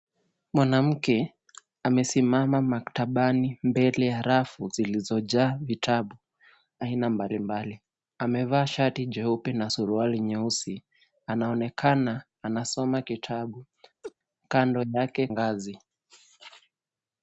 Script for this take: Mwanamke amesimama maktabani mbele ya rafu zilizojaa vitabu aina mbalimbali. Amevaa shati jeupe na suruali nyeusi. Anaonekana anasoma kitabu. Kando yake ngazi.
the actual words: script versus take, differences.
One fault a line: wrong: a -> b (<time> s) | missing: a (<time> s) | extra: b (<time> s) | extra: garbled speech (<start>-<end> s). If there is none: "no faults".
no faults